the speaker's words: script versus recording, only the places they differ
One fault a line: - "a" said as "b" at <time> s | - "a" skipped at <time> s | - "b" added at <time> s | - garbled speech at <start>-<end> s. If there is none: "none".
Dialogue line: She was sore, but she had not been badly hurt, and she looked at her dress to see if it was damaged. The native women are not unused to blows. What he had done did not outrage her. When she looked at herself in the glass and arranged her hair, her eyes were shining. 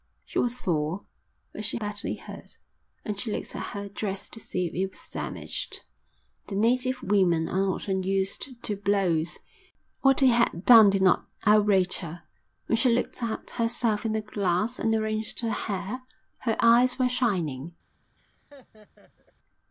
- "had not been" skipped at 1.8 s